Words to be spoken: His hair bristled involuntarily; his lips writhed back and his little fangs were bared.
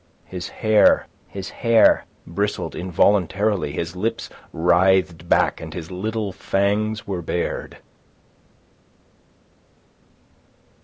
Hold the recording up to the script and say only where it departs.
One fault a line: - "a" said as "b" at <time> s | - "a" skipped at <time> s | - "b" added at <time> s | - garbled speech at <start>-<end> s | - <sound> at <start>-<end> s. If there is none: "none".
- "his hair" added at 1.3 s